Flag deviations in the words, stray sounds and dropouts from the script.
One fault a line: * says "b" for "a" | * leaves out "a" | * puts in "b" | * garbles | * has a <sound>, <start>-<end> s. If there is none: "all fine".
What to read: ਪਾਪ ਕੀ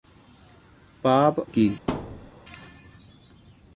* has a thud, 1.9-2.3 s